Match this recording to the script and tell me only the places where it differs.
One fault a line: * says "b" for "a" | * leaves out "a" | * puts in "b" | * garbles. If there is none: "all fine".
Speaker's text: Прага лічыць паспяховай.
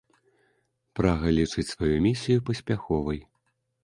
* puts in "сваю місію"